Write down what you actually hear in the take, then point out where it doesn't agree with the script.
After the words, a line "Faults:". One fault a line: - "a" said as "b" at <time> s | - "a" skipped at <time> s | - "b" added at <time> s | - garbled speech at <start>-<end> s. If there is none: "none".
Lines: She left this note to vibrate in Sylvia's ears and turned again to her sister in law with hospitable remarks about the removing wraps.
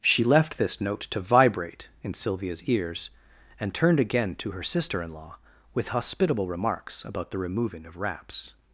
She left this note to vibrate in Sylvia's ears and turned again to her sister in law with hospitable remarks about the removing of wraps.
Faults:
- "of" added at 7.9 s